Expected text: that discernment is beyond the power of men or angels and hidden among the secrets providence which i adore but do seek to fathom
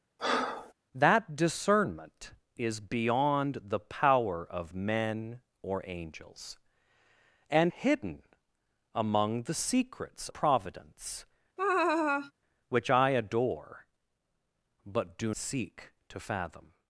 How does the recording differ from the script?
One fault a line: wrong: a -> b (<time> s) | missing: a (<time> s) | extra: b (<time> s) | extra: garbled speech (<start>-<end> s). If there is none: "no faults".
no faults